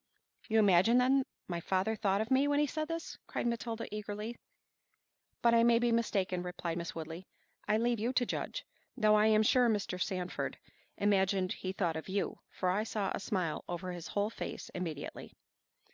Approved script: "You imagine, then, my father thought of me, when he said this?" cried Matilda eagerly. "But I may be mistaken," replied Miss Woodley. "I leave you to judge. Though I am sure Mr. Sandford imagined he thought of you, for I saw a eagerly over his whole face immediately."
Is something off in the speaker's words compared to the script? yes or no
yes